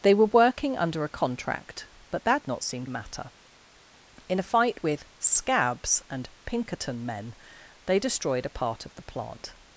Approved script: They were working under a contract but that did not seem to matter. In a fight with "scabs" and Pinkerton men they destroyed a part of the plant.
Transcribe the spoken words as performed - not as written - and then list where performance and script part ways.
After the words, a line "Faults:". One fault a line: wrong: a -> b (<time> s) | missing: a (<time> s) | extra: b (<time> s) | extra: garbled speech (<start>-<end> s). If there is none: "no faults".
They were working under a contract but that not seem matter. In a fight with "scabs" and Pinkerton men they destroyed a part of the plant.
Faults:
missing: did (2.4 s)
missing: to (2.9 s)